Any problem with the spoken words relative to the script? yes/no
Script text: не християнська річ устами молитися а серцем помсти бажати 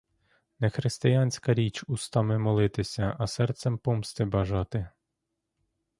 no